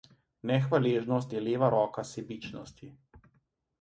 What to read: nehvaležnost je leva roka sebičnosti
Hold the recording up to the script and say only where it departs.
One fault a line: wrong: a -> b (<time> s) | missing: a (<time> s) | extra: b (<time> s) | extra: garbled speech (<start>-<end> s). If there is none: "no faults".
no faults